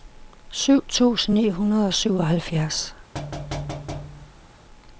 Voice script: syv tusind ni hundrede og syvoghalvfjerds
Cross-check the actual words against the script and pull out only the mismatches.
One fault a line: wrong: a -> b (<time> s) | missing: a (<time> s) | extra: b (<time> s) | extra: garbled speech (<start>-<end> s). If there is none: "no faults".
no faults